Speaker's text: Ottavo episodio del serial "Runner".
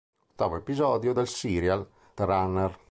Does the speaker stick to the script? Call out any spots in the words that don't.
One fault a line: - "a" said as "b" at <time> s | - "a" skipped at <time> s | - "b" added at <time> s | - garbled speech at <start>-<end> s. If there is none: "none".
none